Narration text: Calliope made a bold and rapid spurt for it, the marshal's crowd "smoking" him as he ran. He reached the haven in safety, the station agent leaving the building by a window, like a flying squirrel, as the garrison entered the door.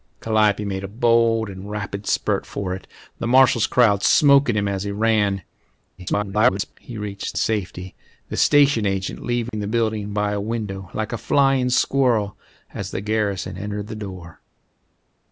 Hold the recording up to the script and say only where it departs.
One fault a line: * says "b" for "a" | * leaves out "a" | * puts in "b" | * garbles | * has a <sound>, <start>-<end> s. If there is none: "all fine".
* garbles
* leaves out "the haven in"
* has a dropout, 9.5-9.5 s